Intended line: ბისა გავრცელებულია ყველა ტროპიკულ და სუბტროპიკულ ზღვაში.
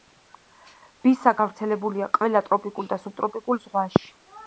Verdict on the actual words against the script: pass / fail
pass